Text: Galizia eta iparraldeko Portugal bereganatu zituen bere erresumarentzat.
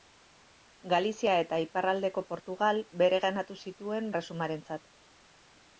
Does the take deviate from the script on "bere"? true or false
true